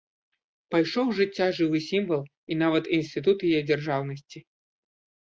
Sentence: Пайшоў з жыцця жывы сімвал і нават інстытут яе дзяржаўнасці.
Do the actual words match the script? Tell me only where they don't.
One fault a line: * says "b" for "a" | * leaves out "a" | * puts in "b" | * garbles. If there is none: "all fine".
all fine